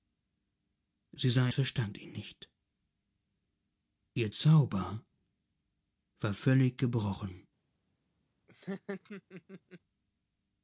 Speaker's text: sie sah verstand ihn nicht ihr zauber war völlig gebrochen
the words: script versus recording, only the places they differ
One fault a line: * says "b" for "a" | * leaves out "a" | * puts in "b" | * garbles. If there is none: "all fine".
all fine